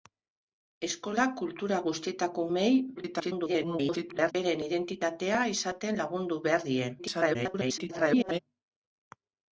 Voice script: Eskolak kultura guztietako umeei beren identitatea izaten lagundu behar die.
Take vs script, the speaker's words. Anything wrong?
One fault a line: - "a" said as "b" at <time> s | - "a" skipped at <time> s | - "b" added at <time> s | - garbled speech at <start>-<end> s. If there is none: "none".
- garbled speech at 3.0-4.3 s
- garbled speech at 7.0-8.4 s